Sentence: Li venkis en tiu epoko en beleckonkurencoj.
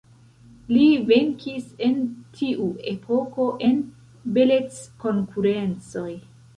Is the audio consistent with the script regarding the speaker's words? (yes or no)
yes